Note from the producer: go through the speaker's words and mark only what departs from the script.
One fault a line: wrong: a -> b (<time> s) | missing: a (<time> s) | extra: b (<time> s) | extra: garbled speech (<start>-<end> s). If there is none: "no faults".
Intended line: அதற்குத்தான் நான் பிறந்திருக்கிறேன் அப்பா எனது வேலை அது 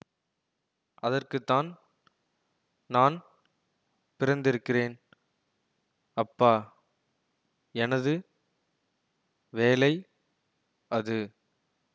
no faults